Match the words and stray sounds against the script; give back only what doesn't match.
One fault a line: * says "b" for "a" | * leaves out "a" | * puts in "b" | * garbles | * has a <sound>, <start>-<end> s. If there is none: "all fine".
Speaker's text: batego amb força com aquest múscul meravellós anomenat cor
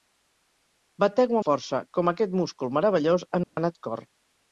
* leaves out "amb"
* has a dropout, 3.4-3.6 s